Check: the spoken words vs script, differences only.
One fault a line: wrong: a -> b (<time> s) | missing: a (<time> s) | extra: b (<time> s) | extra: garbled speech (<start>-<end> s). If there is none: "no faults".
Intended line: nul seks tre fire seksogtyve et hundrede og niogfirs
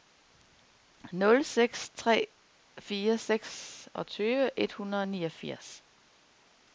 no faults